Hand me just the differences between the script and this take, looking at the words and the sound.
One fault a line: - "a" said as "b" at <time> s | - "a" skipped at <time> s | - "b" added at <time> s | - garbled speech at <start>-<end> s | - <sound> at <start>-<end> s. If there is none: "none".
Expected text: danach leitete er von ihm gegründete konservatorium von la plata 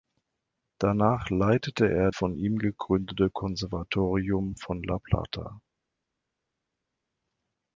none